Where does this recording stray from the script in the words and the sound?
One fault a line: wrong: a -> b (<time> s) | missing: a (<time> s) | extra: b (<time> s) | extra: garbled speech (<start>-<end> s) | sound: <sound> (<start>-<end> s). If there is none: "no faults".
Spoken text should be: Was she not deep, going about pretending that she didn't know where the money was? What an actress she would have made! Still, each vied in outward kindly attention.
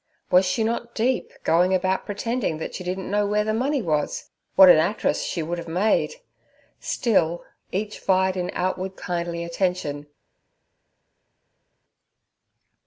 no faults